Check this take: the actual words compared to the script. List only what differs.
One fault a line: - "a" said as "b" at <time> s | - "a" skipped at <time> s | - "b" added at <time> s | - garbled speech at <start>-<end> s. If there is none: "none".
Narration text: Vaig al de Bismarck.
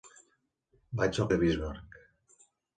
none